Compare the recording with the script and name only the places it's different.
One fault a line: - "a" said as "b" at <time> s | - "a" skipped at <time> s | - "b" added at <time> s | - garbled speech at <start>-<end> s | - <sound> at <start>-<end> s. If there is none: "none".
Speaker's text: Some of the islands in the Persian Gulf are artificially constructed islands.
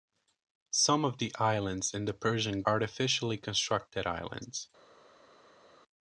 - "Gulf are" skipped at 2.6 s